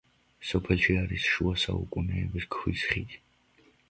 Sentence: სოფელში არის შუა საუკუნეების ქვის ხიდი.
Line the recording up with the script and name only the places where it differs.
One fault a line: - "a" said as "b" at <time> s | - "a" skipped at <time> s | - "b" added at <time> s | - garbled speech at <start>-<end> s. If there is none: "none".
none